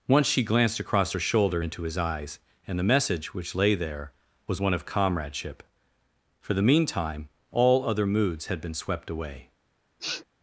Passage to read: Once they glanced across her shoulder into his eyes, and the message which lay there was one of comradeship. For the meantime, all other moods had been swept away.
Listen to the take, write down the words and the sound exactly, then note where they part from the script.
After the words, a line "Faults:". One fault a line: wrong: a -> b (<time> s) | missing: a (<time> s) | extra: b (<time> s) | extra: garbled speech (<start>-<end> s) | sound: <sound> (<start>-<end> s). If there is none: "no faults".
Once she glanced across her shoulder into his eyes, and the message which lay there was one of comradeship. For the meantime, all other moods had been swept away.
Faults:
wrong: they -> she (0.3 s)
sound: sniff (10.0-10.2 s)